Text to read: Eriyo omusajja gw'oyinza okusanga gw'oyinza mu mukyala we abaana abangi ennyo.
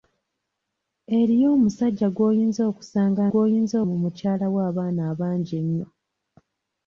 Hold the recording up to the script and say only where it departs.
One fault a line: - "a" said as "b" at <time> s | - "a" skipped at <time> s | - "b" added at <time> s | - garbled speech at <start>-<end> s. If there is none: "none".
none